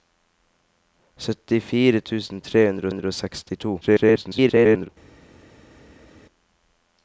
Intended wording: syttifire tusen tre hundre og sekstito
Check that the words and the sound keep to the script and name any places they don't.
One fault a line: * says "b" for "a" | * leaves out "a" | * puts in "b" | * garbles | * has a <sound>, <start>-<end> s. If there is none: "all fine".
* puts in "hundre"
* garbles